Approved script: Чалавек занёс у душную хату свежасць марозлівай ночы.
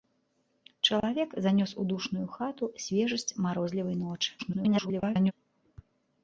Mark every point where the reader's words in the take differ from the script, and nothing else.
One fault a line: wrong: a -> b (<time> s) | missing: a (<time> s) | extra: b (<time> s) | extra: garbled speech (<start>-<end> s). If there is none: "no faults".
extra: garbled speech (4.4-5.3 s)